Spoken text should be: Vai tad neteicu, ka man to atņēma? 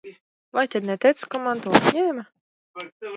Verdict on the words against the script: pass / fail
pass